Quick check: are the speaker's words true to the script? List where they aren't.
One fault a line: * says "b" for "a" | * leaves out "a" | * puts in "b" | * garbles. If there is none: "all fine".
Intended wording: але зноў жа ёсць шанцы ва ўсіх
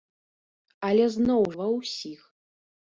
* leaves out "жа ёсць шанцы"